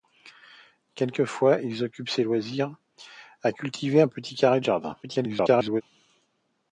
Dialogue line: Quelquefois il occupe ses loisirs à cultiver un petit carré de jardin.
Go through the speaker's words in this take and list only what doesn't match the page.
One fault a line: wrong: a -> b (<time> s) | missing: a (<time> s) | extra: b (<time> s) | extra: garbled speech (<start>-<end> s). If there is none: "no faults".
extra: garbled speech (5.0-5.8 s)